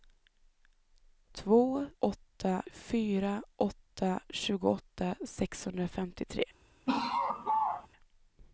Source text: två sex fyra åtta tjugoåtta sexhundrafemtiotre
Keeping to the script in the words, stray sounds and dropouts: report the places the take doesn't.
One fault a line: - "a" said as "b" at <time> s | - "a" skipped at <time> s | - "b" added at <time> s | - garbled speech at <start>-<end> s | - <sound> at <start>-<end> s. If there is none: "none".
- "sex" said as "åtta" at 2.0 s
- laugh at 6.9-7.9 s